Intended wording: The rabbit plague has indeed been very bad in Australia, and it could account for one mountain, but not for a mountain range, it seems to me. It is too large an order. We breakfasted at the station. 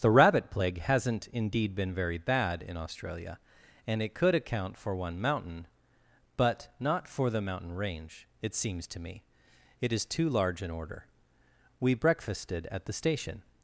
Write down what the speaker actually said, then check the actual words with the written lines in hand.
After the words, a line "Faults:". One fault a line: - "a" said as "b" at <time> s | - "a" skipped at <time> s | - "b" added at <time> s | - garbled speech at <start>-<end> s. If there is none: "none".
The rabbit plague hasn't indeed been very bad in Australia, and it could account for one mountain, but not for the mountain range, it seems to me. It is too large an order. We breakfasted at the station.
Faults:
- "has" said as "hasn't" at 0.8 s
- "a" said as "the" at 7.3 s